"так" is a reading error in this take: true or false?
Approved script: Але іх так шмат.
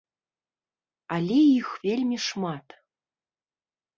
true